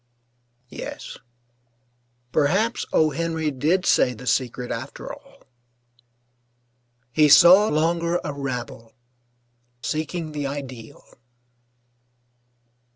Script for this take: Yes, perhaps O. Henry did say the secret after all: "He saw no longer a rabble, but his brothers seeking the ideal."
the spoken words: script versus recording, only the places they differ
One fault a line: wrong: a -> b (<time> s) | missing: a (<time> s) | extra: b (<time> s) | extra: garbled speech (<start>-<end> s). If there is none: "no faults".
missing: no (7.7 s)
missing: but his brothers (8.9 s)